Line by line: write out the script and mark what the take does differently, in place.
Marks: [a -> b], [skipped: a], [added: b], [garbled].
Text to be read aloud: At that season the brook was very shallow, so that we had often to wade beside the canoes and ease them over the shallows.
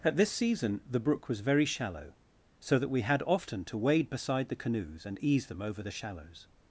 At [that -> this] season the brook was very shallow, so that we had often to wade beside the canoes and ease them over the shallows.